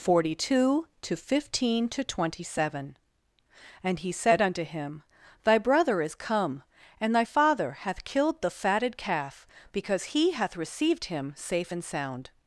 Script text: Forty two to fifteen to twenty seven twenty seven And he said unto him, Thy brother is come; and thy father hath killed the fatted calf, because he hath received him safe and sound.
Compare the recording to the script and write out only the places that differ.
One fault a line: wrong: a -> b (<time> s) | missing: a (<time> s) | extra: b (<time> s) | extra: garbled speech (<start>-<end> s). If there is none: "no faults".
missing: twenty seven (3.0 s)